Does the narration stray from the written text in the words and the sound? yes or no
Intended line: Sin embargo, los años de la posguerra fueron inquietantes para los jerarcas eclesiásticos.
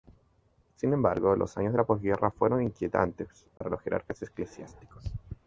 yes